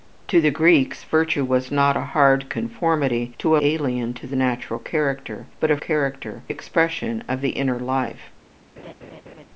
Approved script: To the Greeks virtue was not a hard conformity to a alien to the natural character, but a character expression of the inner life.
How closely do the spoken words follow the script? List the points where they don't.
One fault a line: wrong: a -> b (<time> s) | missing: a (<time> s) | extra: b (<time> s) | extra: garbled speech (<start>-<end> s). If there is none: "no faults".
no faults